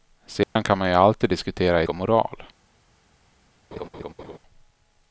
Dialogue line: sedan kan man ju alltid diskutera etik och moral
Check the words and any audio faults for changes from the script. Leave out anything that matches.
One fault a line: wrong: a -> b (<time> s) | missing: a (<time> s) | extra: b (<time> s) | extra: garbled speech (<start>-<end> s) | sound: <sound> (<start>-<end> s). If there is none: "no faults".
sound: dropout (0.4-0.6 s)
missing: etik (1.8 s)
sound: laugh (3.7-4.4 s)